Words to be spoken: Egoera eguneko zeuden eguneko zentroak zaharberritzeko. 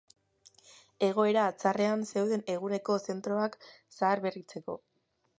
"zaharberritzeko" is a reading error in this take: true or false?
false